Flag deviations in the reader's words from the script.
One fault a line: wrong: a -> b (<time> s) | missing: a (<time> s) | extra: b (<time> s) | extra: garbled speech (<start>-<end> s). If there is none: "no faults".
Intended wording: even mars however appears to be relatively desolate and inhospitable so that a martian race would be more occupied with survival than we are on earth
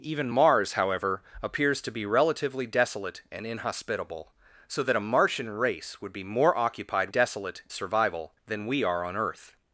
wrong: with -> desolate (7.1 s)